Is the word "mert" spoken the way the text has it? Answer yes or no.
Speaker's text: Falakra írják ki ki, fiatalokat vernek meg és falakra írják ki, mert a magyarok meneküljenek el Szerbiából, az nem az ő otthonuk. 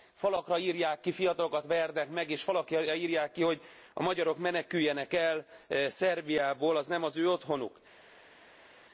no